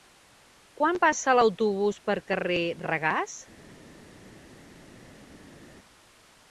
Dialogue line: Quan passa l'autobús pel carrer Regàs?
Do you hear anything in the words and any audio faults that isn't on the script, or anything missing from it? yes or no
no